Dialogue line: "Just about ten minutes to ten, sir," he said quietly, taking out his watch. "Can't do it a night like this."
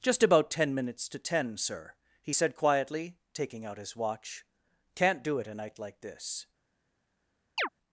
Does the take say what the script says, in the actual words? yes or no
yes